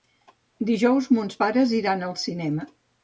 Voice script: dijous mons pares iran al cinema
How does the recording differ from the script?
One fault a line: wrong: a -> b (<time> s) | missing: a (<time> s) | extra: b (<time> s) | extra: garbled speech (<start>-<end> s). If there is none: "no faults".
no faults